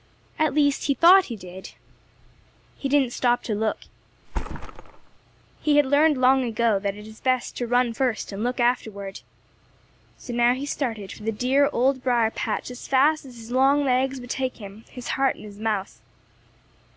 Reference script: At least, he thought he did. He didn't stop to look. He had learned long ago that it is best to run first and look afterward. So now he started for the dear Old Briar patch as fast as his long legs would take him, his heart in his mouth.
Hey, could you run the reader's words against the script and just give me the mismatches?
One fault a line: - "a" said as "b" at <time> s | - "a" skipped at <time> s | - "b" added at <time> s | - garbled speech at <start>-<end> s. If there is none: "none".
none